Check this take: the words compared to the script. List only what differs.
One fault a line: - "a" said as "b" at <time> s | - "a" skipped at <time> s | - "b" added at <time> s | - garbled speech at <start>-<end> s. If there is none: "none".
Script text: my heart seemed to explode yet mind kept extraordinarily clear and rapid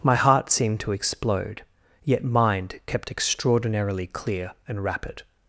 none